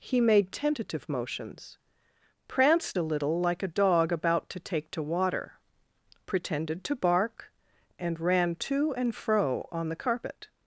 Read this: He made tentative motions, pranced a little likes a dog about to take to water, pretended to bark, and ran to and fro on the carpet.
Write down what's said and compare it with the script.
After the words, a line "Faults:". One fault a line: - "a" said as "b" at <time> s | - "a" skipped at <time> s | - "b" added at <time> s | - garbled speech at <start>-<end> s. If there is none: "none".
He made tentative motions, pranced a little like a dog about to take to water, pretended to bark, and ran to and fro on the carpet.
Faults:
- "likes" said as "like" at 3.4 s